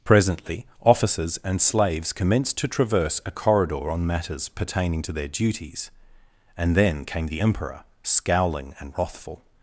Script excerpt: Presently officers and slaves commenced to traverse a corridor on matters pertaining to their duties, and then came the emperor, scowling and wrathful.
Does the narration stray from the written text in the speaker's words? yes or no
no